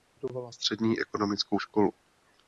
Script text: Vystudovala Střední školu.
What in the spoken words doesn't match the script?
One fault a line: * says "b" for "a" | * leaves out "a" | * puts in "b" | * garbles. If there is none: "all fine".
* puts in "ekonomickou"